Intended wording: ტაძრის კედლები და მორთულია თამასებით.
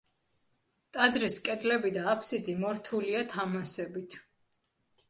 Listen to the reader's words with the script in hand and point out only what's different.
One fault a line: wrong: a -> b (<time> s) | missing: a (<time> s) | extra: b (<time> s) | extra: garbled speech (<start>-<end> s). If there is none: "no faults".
extra: აფსიდი (2.1 s)